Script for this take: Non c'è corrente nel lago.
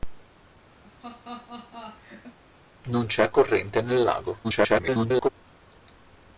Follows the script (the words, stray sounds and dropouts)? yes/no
no